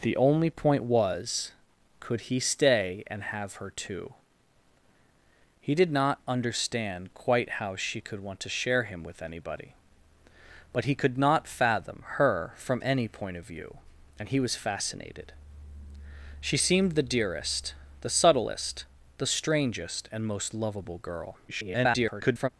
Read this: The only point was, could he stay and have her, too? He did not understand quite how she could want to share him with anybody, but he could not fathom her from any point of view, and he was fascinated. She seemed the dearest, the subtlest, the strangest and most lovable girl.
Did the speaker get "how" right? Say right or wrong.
right